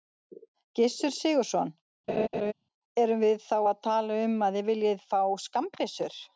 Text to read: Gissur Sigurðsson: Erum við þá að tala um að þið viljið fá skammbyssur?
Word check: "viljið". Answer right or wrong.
right